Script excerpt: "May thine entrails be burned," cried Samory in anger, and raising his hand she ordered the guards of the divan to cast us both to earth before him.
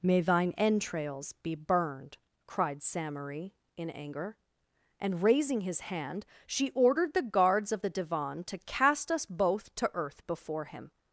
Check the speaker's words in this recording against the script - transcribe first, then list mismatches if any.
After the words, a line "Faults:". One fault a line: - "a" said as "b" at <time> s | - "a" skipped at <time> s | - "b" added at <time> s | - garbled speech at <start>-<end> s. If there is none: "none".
"May thine entrails be burned," cried Samory in anger, and raising his hand she ordered the guards of the divan to cast us both to earth before him.
Faults:
none